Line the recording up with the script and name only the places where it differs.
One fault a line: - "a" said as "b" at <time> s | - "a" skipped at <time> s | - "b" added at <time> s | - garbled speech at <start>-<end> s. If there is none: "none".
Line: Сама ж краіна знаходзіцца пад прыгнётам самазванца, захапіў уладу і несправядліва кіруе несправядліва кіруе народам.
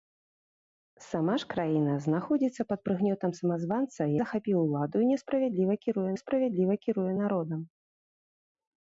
none